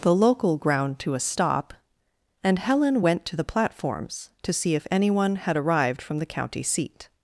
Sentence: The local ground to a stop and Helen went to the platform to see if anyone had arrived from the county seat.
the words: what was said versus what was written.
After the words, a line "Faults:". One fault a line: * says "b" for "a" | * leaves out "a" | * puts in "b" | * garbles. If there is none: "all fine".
The local ground to a stop and Helen went to the platforms to see if anyone had arrived from the county seat.
Faults:
* says "platforms" for "platform"